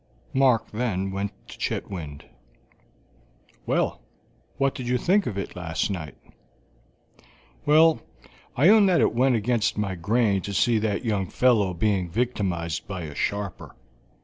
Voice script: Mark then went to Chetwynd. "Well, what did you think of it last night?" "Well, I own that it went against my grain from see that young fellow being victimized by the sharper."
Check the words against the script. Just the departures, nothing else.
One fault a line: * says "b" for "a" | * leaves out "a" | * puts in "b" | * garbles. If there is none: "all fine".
* says "to" for "from"
* says "a" for "the"